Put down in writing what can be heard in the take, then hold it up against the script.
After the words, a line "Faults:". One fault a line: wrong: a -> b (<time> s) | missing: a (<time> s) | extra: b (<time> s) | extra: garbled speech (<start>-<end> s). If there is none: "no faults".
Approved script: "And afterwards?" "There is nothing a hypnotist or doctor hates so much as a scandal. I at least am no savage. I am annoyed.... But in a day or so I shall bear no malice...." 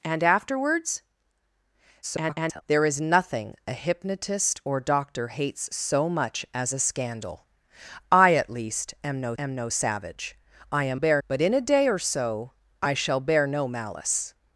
"And afterwards?" [garbled] "There is nothing a hypnotist or doctor hates so much as a scandal. I at least am no am no savage. I am bear.... But in a day or so I shall bear no malice...."
Faults:
extra: garbled speech (2.0-2.6 s)
extra: am no (9.4 s)
wrong: annoyed -> bear (10.9 s)